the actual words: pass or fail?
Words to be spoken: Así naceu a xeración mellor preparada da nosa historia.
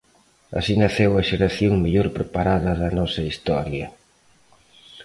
pass